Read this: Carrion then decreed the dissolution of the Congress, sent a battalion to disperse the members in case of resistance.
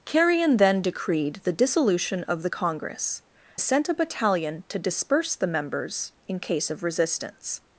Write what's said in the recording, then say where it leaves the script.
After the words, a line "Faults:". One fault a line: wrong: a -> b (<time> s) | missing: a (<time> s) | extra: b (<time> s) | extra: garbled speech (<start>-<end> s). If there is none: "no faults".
Carrion then decreed the dissolution of the Congress, sent a battalion to disperse the members in case of resistance.
Faults:
no faults